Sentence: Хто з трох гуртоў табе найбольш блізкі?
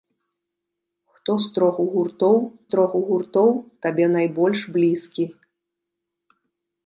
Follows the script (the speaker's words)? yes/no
no